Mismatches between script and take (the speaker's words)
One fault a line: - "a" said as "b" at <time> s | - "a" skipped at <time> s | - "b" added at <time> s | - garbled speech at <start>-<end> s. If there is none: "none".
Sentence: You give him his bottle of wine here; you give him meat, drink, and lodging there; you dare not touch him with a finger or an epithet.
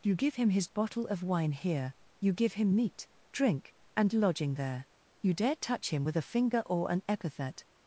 - "not" skipped at 5.6 s